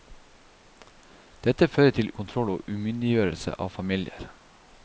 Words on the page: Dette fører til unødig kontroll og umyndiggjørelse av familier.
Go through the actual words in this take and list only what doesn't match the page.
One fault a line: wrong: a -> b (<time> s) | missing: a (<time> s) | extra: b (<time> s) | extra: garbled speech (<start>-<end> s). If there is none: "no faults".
missing: unødig (2.1 s)